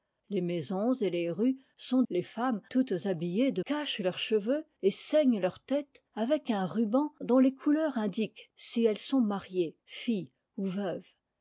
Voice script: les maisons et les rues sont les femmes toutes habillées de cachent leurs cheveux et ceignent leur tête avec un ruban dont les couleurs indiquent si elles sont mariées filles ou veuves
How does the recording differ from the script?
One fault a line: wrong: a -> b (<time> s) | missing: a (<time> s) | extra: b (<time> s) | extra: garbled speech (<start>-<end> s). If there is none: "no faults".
no faults